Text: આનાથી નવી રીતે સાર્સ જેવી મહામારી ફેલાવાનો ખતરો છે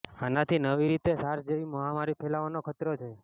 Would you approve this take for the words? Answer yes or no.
yes